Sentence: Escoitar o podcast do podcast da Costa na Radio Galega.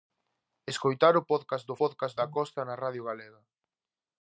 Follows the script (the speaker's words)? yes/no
yes